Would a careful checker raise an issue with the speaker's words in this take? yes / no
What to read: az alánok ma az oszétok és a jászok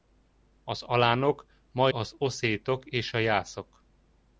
no